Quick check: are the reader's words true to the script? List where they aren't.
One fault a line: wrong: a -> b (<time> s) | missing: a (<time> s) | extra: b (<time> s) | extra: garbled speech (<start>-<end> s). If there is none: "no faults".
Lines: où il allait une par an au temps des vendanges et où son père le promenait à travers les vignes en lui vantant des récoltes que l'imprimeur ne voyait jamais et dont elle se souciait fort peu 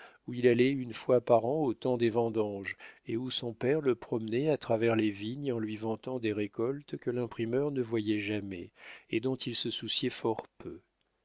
extra: fois (0.9 s)
wrong: elle -> il (9.3 s)